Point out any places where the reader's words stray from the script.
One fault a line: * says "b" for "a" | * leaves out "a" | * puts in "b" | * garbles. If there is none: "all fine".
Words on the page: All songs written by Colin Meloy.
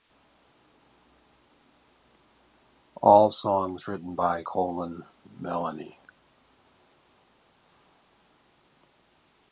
all fine